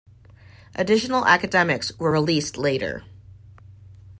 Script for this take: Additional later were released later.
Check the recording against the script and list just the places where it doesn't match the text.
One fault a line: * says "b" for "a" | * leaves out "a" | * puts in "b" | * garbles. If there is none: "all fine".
* says "academics" for "later"